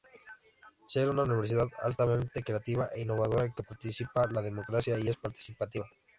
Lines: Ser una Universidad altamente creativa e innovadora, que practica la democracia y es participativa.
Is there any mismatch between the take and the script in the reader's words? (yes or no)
no